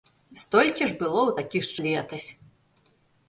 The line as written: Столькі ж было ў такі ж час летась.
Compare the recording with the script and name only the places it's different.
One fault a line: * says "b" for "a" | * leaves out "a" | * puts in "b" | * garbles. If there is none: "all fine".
* leaves out "час"